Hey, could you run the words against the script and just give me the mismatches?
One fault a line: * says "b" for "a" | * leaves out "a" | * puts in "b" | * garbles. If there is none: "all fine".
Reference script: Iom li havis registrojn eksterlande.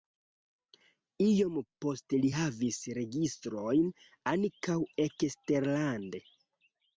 * puts in "poste"
* puts in "ankaŭ"